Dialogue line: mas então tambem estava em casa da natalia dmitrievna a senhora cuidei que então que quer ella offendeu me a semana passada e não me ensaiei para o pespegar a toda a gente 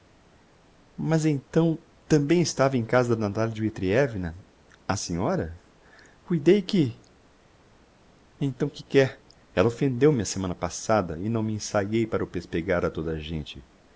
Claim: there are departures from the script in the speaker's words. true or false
false